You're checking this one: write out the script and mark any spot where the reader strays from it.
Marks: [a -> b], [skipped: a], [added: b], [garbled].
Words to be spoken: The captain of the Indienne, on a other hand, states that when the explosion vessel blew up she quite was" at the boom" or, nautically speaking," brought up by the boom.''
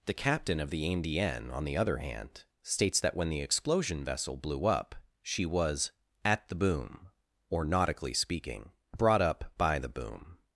The captain of the Indienne, on [a -> the] other hand, states that when the explosion vessel blew up she [skipped: quite] was" at the boom" or, nautically speaking," brought up by the boom.''